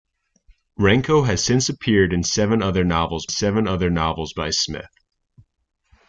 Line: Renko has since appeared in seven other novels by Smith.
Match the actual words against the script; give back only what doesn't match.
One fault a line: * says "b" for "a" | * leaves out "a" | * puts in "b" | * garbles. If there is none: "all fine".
* puts in "seven other novels"